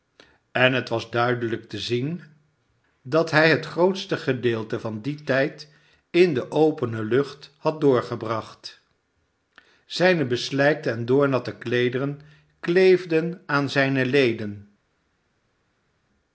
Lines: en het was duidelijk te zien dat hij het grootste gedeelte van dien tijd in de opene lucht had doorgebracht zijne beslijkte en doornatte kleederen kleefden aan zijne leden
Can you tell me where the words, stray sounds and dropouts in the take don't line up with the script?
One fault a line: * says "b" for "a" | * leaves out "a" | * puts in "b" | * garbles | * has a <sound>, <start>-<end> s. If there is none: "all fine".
all fine